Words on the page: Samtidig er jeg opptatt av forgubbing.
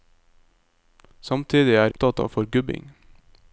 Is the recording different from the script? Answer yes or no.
yes